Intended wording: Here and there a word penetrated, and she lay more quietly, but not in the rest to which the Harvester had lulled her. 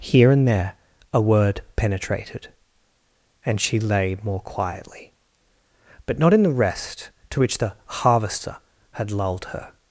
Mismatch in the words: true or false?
false